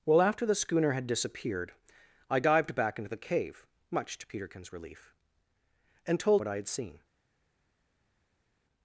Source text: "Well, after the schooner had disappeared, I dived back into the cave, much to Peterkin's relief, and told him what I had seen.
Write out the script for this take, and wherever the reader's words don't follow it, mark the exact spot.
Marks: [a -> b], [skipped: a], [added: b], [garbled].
"Well, after the schooner had disappeared, I dived back into the cave, much to Peterkin's relief, and told [skipped: him] what I had seen.